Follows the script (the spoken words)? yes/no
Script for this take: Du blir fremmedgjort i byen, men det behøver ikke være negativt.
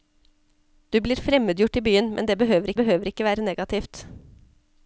no